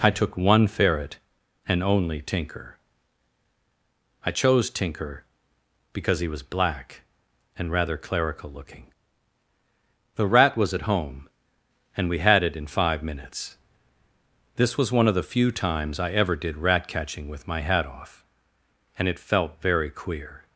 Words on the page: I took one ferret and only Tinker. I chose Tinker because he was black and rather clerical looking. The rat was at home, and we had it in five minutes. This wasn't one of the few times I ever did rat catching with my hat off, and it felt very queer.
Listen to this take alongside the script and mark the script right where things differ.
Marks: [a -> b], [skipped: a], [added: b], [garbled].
I took one ferret and only Tinker. I chose Tinker because he was black and rather clerical looking. The rat was at home, and we had it in five minutes. This [wasn't -> was] one of the few times I ever did rat catching with my hat off, and it felt very queer.